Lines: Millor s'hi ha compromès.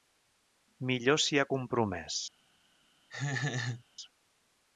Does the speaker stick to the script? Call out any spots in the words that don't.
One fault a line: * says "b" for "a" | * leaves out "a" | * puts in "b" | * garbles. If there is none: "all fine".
all fine